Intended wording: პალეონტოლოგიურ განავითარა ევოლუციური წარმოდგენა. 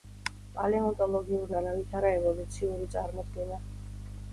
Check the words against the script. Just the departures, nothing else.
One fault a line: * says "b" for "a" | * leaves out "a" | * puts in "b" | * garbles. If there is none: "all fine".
all fine